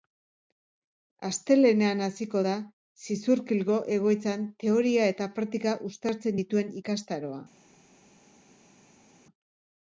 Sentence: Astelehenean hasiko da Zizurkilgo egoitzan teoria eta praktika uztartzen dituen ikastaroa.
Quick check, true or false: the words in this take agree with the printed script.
true